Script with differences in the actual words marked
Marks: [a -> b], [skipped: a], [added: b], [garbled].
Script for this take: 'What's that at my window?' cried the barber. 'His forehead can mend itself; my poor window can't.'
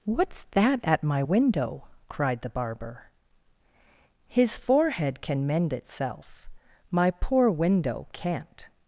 'What's that at my window?' cried the barber. 'His forehead can mend itself; my poor window can't.'